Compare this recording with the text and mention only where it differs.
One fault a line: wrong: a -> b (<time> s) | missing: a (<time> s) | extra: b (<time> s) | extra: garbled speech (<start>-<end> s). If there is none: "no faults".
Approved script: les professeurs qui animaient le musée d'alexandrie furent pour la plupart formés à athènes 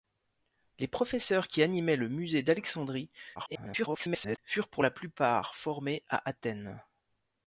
extra: garbled speech (3.4-4.4 s)